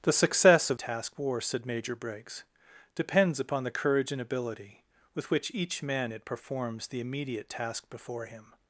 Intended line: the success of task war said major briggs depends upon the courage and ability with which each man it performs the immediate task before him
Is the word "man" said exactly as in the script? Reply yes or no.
yes